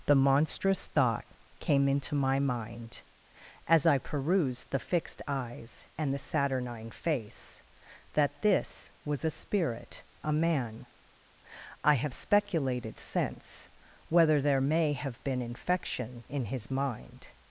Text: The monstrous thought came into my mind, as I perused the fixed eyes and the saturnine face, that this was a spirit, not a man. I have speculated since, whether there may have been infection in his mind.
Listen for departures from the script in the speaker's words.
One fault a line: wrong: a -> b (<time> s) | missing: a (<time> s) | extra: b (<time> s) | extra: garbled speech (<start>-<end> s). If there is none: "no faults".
missing: not (10.0 s)